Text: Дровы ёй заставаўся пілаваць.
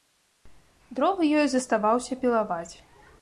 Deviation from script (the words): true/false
false